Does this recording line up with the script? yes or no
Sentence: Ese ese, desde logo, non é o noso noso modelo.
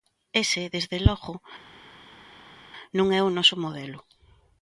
no